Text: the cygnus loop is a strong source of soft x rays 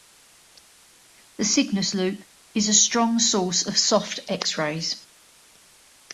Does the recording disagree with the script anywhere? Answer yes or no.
no